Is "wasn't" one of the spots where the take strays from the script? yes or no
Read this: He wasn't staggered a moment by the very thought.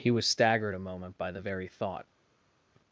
yes